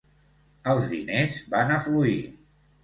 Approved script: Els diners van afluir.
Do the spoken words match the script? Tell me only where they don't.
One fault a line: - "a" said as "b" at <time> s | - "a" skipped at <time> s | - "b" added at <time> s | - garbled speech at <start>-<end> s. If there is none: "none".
none